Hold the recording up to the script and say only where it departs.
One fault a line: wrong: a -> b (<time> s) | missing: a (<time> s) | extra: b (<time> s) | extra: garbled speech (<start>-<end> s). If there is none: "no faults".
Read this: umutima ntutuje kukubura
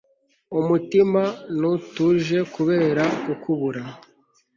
extra: kubera (2.5 s)